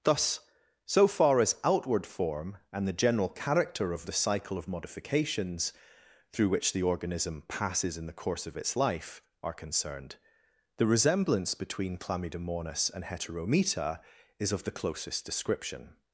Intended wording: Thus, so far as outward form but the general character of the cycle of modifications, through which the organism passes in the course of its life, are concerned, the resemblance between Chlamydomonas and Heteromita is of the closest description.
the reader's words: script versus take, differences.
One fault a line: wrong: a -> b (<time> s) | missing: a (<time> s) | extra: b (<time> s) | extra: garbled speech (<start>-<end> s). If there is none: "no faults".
wrong: but -> and (2.7 s)